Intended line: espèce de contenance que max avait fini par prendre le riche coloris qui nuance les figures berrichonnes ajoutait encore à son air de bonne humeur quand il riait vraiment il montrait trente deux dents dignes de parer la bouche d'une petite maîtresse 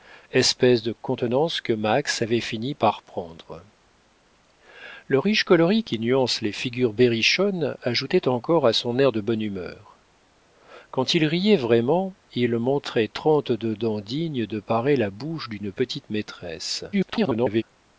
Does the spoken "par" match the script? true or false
true